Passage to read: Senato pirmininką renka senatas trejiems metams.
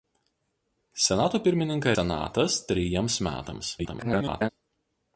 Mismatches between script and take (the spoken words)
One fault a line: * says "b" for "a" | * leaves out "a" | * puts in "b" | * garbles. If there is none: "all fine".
* leaves out "renka"
* garbles